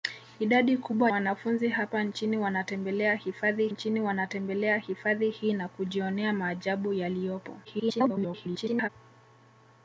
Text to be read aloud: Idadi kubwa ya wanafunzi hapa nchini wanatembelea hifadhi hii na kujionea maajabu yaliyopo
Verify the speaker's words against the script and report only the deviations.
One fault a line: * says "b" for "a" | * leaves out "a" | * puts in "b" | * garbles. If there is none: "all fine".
* leaves out "ya"
* puts in "nchini wanatembelea hifadhi"
* garbles